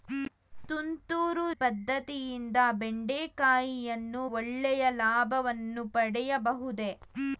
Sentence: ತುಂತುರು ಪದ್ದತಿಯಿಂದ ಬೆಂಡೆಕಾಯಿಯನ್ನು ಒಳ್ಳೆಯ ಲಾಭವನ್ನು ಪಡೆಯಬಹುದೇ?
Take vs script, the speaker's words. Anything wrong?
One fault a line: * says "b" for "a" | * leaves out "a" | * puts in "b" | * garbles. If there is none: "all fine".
all fine